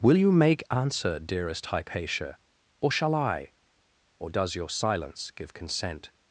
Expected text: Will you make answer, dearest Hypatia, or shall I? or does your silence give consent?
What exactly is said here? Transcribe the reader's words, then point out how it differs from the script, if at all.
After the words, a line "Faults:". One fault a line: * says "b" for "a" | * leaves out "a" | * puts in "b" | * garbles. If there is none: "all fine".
Will you make answer, dearest Hypatia, or shall I? or does your silence give consent?
Faults:
all fine